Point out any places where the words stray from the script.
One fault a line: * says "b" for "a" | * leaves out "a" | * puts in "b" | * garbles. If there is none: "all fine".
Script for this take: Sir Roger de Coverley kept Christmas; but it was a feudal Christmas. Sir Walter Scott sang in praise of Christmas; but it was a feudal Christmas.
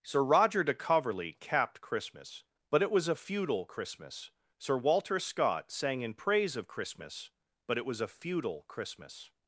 * says "capped" for "kept"